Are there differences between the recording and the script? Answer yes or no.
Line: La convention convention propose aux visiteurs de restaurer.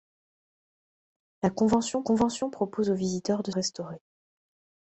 no